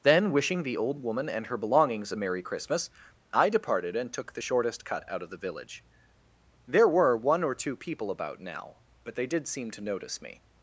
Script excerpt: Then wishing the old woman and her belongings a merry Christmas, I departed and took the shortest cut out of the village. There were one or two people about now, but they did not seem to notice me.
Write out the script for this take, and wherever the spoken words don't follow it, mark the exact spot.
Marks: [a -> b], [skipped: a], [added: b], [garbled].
Then wishing the old woman and her belongings a merry Christmas, I departed and took the shortest cut out of the village. There were one or two people about now, but they did [skipped: not] seem to notice me.